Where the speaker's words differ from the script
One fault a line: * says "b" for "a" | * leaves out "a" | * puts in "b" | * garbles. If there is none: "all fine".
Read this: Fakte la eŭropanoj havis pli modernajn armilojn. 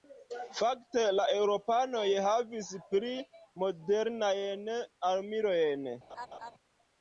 all fine